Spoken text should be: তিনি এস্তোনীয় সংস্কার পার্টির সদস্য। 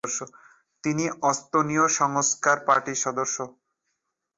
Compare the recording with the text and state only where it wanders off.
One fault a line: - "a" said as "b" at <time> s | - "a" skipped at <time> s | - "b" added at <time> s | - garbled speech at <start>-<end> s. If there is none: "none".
none